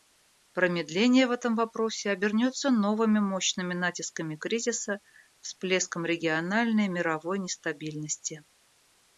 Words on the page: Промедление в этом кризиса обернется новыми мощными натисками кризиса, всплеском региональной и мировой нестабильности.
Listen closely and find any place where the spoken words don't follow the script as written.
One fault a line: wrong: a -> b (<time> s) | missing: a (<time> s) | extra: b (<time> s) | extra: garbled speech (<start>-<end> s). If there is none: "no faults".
wrong: кризиса -> вопросе (1.5 s)